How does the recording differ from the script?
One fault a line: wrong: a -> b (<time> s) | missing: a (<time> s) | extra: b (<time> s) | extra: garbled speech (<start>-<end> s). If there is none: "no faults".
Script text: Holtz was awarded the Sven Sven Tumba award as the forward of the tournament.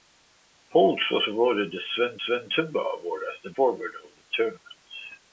no faults